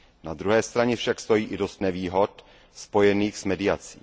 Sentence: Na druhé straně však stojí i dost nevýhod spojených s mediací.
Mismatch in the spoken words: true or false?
false